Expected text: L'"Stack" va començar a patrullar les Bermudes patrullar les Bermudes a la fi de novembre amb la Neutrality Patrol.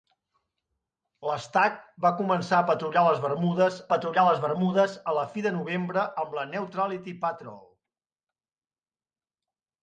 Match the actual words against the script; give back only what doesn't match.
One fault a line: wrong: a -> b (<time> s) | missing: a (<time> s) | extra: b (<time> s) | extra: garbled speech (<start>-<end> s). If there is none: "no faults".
no faults